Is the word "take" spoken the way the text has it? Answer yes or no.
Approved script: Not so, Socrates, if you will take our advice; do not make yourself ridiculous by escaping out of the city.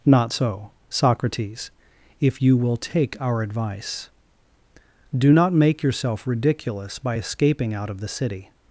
yes